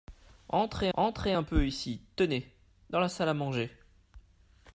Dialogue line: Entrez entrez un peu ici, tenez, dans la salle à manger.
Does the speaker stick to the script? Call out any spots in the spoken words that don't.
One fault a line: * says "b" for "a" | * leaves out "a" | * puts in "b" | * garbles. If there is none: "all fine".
all fine